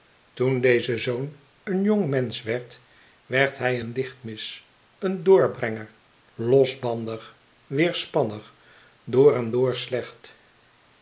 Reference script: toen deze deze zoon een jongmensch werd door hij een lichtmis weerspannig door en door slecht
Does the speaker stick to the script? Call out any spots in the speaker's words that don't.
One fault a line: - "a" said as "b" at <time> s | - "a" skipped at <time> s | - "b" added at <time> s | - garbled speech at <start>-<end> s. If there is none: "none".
- "deze" skipped at 1.0 s
- "door" said as "werd" at 3.2 s
- "een doorbrenger losbandig" added at 5.0 s